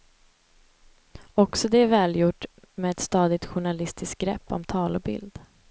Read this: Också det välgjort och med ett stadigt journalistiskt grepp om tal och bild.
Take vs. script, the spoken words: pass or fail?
fail